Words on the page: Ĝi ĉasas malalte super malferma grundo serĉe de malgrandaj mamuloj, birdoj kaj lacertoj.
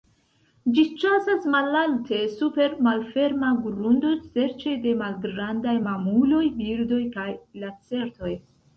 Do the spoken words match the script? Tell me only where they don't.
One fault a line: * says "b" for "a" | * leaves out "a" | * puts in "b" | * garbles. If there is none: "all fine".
all fine